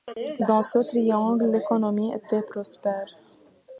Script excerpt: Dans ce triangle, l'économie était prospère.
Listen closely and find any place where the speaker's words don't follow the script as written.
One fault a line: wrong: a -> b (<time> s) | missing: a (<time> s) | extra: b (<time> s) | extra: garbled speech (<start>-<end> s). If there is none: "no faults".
no faults